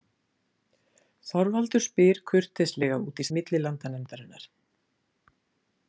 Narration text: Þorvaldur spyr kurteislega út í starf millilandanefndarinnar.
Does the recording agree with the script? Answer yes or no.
no